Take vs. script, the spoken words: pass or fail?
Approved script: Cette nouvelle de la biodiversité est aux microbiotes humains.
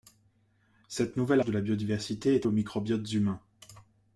pass